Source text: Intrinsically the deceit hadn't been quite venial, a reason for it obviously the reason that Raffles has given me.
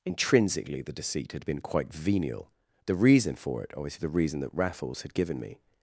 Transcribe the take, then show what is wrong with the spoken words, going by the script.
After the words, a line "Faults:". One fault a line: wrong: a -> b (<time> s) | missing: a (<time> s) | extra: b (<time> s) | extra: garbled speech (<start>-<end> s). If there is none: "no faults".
Intrinsically the deceit had been quite venial, the reason for it obviously the reason that Raffles had given me.
Faults:
wrong: hadn't -> had (1.3 s)
wrong: a -> the (2.8 s)
wrong: has -> had (5.0 s)